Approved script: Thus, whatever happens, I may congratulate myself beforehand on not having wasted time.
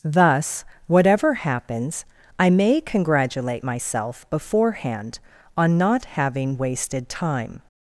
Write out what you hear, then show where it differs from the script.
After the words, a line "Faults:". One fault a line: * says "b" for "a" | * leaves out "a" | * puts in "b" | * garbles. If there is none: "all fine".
Thus, whatever happens, I may congratulate myself beforehand on not having wasted time.
Faults:
all fine